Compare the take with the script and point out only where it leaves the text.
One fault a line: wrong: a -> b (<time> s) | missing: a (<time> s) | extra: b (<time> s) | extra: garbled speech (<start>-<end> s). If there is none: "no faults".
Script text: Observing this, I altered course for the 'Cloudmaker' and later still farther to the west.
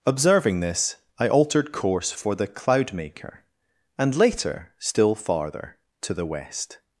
no faults